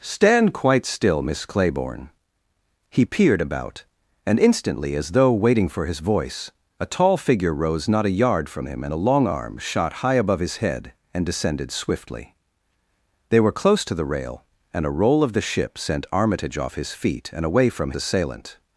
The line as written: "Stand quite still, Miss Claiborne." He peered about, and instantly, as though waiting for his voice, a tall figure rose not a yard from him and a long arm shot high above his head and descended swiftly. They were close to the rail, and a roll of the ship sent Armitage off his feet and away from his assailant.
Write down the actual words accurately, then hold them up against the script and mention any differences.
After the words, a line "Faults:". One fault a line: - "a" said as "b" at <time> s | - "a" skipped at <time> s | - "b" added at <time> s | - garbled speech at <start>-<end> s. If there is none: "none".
"Stand quite still, Miss Claiborne." He peered about, and instantly, as though waiting for his voice, a tall figure rose not a yard from him and a long arm shot high above his head and descended swiftly. They were close to the rail, and a roll of the ship sent Armitage off his feet and away from assailant.
Faults:
- "his" skipped at 17.9 s